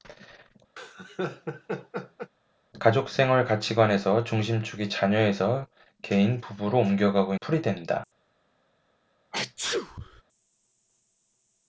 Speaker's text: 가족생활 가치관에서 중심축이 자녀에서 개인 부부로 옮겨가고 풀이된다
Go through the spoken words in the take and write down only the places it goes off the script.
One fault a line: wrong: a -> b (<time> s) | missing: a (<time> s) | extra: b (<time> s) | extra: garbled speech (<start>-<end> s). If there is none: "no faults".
no faults